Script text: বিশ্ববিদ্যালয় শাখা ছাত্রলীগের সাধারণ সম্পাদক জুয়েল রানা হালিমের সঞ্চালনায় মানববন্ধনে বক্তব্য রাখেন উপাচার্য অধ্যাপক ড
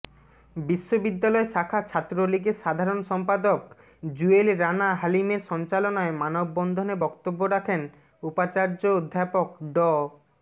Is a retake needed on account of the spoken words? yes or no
no